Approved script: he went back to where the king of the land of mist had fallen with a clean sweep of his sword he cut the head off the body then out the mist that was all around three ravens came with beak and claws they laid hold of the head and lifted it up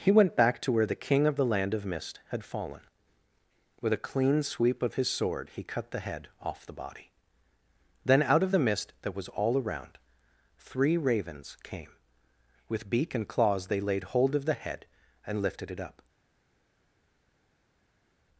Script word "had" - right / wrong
right